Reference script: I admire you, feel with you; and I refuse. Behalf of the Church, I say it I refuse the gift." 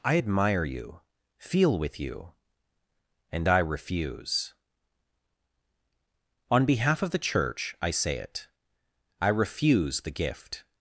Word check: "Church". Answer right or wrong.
right